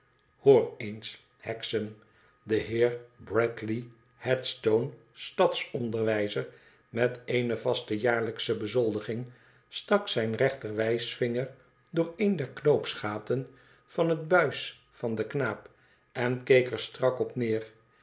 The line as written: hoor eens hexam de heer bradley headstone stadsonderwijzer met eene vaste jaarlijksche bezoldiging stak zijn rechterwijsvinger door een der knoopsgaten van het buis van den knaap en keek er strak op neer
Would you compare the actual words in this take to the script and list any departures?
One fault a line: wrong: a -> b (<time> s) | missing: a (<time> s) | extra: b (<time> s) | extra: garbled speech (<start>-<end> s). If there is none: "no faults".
no faults